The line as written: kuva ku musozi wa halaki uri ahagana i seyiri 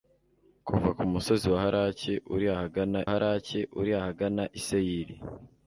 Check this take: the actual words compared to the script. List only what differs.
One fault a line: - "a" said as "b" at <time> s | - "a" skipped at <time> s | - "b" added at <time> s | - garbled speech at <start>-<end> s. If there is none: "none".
- "halaki uri ahagana" added at 3.1 s